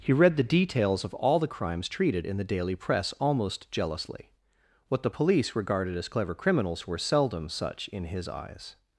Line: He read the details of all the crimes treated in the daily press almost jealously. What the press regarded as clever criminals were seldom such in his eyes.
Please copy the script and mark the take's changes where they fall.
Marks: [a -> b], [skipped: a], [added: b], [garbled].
He read the details of all the crimes treated in the daily press almost jealously. What the [press -> police] regarded as clever criminals were seldom such in his eyes.